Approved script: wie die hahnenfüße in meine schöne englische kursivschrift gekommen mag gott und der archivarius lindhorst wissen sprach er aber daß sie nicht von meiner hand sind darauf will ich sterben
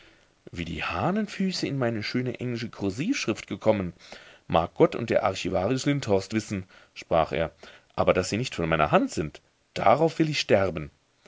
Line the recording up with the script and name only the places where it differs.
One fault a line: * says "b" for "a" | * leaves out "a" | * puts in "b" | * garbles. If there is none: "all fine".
all fine